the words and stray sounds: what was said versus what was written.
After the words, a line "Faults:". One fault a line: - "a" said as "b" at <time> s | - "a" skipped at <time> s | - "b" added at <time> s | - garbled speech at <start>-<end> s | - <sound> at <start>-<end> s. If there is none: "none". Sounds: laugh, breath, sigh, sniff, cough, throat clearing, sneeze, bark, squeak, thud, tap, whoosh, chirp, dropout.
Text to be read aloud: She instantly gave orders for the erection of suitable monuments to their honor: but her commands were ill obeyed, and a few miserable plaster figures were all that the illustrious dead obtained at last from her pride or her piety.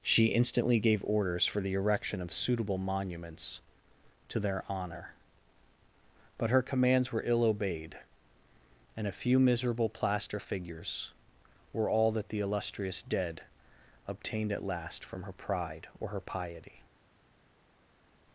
She instantly gave orders for the erection of suitable monuments to their honor: but her commands were ill obeyed, and a few miserable plaster figures were all that the illustrious dead obtained at last from her pride or her piety.
Faults:
none